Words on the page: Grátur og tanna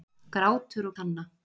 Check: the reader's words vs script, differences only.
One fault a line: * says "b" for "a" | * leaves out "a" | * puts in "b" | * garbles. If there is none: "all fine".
all fine